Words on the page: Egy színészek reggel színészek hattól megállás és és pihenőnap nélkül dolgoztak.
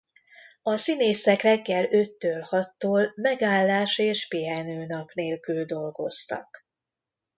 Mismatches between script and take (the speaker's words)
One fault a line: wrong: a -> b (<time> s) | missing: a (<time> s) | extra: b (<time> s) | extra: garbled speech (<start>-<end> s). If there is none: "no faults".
wrong: Egy -> A (0.6 s)
wrong: színészek -> öttől (1.9 s)
missing: és (4.3 s)